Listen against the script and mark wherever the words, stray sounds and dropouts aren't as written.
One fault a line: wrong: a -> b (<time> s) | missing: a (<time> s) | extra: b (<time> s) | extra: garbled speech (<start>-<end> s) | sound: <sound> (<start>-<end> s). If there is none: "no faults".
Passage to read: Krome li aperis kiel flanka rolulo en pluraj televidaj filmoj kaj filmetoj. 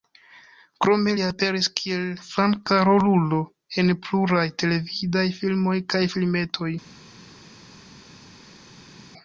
no faults